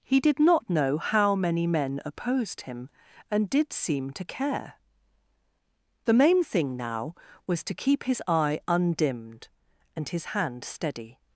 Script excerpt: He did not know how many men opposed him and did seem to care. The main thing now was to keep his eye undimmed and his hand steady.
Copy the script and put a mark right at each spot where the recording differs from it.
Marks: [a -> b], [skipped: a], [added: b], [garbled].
He did not know how many men opposed him and did seem to care. The main thing now was to keep his eye undimmed and his hand steady.